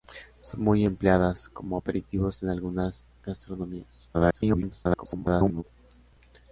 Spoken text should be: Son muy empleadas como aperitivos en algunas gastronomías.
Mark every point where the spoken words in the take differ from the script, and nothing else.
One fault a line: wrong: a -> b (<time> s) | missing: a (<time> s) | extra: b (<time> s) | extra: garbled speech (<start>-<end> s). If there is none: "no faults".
extra: garbled speech (4.1-5.6 s)